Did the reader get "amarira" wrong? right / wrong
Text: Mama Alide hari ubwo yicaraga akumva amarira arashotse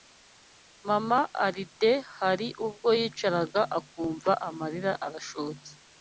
right